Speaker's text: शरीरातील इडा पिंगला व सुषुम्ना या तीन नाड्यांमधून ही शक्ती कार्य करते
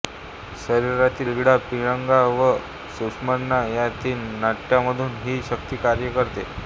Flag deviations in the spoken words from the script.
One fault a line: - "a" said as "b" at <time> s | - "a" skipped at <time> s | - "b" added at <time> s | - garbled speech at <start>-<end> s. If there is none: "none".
none